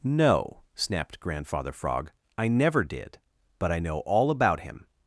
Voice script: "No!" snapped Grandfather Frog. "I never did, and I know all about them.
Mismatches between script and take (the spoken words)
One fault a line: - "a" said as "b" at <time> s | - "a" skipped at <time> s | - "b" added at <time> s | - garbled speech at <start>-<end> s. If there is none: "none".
- "and" said as "but" at 3.6 s
- "them" said as "him" at 4.6 s